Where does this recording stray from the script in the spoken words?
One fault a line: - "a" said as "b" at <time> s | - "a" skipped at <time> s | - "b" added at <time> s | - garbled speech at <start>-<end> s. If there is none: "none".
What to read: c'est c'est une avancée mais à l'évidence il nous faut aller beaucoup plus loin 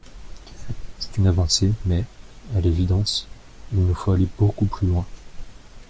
- "c'est" skipped at 1.2 s